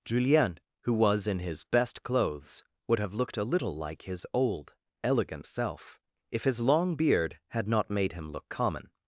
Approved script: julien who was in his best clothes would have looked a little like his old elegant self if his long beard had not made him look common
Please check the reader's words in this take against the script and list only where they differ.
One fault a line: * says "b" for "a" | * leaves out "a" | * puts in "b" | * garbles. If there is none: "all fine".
all fine